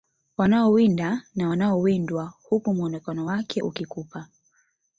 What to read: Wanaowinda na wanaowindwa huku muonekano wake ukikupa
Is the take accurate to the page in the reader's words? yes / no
yes